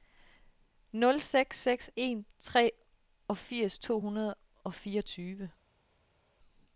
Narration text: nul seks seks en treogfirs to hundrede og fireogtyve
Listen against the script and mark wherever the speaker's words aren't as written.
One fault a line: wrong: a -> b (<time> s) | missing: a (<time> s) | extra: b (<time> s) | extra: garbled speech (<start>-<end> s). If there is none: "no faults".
no faults